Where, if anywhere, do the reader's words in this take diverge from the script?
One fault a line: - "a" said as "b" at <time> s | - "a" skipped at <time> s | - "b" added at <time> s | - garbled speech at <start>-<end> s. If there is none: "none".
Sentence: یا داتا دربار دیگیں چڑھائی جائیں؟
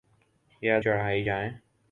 - "داتا دربار دیگیں" skipped at 0.8 s